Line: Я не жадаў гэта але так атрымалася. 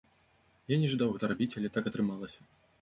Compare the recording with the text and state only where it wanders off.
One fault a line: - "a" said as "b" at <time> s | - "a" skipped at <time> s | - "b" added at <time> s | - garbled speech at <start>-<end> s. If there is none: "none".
- "рабіць" added at 1.3 s